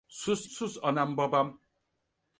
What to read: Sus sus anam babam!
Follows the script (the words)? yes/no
yes